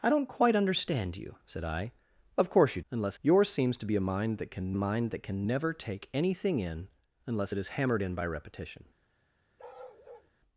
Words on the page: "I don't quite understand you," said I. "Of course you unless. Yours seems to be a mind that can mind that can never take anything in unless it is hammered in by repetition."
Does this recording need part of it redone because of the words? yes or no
no